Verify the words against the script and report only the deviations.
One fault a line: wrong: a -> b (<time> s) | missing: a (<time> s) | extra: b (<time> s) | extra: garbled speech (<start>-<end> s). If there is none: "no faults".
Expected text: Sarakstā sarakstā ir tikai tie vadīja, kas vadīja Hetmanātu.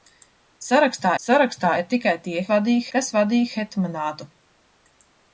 no faults